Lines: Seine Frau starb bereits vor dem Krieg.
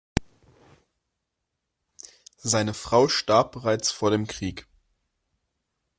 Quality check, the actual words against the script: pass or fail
pass